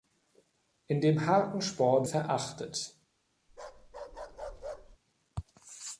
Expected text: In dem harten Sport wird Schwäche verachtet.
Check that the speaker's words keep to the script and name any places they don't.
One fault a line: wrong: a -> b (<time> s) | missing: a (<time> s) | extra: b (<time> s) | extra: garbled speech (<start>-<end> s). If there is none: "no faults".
missing: wird Schwäche (2.1 s)